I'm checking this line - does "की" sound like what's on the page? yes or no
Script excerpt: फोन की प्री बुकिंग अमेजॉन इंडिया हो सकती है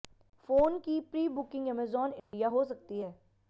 yes